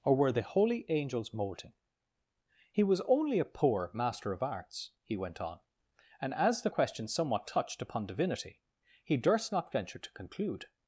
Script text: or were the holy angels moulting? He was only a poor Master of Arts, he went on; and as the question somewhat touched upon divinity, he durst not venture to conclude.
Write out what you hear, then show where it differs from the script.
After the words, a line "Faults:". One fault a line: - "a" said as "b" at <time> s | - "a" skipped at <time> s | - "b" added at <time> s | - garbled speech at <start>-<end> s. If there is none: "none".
or were the holy angels moulting? He was only a poor Master of Arts, he went on; and as the question somewhat touched upon divinity, he durst not venture to conclude.
Faults:
none